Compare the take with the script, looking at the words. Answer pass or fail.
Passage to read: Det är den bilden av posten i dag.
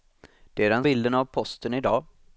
pass